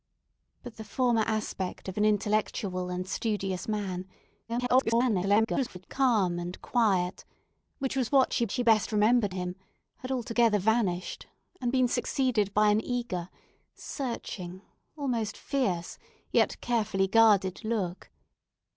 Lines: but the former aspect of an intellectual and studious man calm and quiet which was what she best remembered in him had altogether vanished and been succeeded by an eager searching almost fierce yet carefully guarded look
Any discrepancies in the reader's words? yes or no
yes